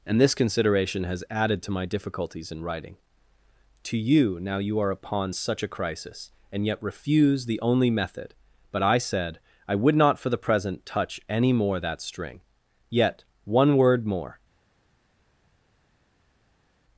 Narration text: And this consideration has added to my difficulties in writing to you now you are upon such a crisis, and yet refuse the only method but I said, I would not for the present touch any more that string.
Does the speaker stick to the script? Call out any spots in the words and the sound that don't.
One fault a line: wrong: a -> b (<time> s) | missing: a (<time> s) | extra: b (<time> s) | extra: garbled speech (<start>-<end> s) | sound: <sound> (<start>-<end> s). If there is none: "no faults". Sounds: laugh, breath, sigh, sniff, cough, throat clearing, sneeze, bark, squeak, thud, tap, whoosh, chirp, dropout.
extra: Yet one word more (12.9 s)